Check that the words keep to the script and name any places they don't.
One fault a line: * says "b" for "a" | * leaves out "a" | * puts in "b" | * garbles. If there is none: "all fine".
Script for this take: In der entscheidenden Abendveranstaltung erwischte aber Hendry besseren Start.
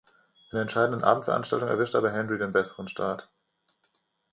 * puts in "den"